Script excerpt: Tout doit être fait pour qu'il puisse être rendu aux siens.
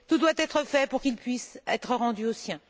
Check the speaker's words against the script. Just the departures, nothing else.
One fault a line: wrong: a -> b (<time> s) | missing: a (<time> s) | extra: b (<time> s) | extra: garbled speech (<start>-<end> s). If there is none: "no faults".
no faults